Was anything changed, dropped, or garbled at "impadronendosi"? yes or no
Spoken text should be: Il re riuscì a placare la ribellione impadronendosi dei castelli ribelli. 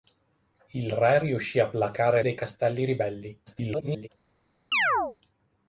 yes